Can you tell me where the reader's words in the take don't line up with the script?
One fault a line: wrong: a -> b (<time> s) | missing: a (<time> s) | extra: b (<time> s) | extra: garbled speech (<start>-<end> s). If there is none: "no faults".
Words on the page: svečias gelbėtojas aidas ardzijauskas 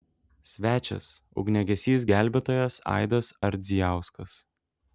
extra: ugniagesys (1.4 s)